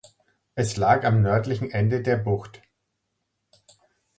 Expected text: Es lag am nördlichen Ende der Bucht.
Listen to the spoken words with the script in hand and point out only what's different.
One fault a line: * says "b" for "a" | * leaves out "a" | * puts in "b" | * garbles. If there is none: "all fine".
all fine